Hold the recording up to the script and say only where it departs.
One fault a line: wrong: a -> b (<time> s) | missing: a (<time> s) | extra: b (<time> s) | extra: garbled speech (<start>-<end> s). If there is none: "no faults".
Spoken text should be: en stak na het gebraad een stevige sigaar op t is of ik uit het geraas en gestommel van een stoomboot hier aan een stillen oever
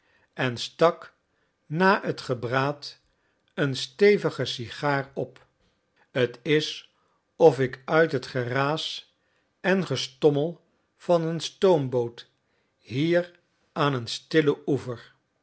no faults